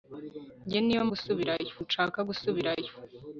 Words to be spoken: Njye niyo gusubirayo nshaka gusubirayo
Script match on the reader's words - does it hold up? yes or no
yes